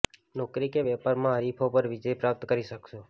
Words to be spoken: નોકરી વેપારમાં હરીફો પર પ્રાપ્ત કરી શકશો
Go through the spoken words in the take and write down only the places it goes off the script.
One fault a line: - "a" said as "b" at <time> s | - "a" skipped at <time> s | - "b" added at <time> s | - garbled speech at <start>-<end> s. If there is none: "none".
- "કે" added at 0.7 s
- "વિજય" added at 1.9 s